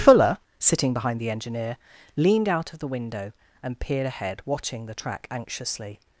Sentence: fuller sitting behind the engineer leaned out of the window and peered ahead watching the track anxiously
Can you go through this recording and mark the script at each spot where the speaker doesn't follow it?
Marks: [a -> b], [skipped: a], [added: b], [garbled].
fuller sitting behind the engineer leaned out of the window and peered ahead watching the track anxiously